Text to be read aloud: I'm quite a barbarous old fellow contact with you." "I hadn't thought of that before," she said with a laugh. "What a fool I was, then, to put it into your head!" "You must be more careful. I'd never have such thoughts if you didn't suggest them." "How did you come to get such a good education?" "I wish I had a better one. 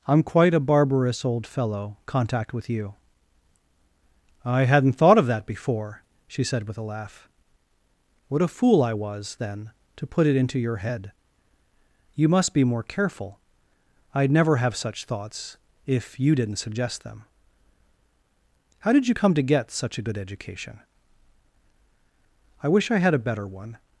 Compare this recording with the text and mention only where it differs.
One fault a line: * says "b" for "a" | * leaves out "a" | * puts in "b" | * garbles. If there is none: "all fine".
all fine